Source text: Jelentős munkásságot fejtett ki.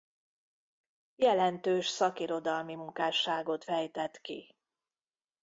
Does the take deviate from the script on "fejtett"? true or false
false